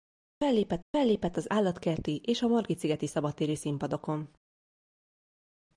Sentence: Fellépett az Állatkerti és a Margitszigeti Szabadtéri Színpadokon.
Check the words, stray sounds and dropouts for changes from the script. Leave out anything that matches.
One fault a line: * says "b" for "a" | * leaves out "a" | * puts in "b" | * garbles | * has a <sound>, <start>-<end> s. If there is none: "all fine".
* puts in "fellépett"